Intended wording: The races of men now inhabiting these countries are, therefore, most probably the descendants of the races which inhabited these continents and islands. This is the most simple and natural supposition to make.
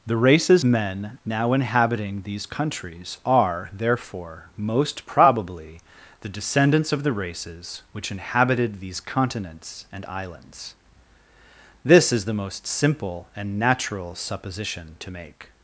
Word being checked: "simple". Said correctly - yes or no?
yes